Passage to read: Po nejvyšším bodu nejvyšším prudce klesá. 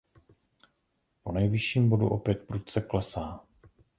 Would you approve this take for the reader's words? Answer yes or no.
no